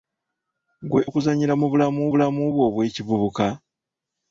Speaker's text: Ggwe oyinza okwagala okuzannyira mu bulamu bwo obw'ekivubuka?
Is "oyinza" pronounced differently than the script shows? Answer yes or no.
yes